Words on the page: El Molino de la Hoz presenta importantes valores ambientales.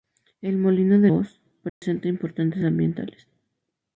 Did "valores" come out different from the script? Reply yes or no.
yes